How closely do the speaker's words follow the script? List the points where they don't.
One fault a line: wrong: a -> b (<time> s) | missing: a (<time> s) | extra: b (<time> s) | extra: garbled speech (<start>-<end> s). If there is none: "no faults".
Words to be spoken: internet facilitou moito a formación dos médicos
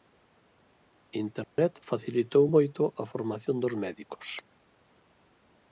no faults